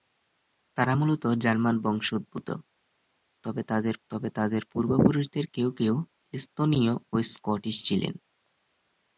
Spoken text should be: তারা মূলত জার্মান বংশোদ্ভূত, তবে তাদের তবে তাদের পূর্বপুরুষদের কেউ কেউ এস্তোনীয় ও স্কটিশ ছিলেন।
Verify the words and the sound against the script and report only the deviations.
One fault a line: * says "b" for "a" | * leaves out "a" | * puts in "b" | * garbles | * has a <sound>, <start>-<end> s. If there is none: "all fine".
all fine